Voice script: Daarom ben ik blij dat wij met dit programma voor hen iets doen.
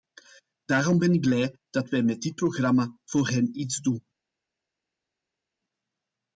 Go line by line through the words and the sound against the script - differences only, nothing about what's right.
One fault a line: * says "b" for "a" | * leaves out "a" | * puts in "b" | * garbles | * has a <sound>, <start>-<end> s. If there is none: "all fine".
all fine